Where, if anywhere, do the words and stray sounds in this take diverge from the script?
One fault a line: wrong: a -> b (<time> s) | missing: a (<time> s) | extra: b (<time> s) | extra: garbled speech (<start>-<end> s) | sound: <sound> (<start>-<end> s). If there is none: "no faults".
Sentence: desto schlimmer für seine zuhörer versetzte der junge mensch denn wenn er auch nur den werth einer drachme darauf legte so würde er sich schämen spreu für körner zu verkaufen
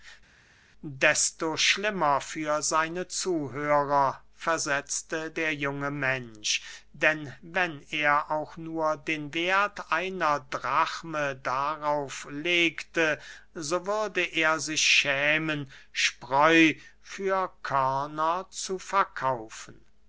no faults